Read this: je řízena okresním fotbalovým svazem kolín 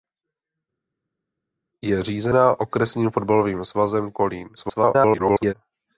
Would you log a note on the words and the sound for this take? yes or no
yes